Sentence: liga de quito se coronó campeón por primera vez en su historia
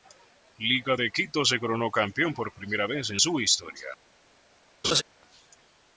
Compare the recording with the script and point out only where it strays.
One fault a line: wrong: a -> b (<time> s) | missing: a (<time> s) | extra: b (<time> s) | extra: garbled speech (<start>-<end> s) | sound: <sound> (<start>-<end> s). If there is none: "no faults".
sound: laugh (4.8-5.0 s)